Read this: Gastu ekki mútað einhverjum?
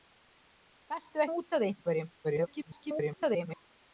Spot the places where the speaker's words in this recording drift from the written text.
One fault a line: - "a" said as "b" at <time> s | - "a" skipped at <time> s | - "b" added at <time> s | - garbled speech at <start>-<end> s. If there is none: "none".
- "ekki" skipped at 1.2 s
- garbled speech at 2.2-3.7 s